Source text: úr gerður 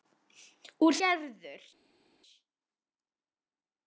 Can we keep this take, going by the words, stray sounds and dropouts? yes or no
yes